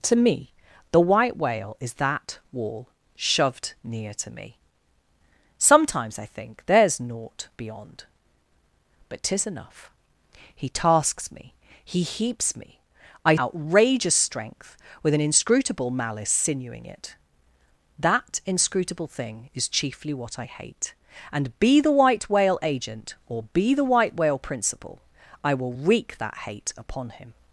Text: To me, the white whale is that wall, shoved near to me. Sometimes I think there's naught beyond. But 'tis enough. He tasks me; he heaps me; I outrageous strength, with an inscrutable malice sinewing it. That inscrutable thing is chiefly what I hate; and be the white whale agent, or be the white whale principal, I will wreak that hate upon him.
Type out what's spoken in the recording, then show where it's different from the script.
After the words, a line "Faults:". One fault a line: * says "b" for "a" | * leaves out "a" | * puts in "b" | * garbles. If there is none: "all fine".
To me, the white whale is that wall, shoved near to me. Sometimes I think there's naught beyond. But 'tis enough. He tasks me; he heaps me; I outrageous strength, with an inscrutable malice sinewing it. That inscrutable thing is chiefly what I hate; and be the white whale agent, or be the white whale principal, I will wreak that hate upon him.
Faults:
all fine